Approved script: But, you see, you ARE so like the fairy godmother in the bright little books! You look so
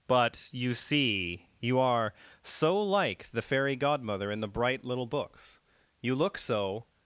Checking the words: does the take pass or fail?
pass